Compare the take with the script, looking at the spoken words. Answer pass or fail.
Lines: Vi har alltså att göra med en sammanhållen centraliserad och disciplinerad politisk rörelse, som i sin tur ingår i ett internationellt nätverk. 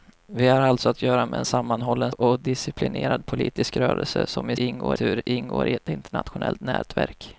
fail